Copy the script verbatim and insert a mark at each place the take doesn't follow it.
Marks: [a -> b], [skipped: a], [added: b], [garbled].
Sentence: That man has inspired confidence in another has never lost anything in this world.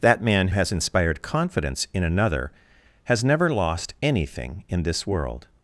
That man has inspired confidence in another has never lost anything in this world.